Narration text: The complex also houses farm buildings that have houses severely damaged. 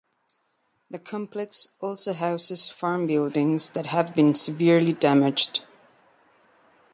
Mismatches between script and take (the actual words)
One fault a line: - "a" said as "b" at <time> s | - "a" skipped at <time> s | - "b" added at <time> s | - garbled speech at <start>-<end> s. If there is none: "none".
- "houses" said as "been" at 4.2 s